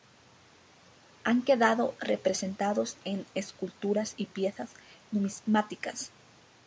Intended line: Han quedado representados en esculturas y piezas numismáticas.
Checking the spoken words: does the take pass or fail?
pass